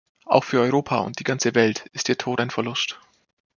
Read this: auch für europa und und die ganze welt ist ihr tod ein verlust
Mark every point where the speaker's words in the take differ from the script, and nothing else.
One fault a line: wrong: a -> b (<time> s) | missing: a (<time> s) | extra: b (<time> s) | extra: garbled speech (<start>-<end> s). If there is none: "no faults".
missing: und (1.2 s)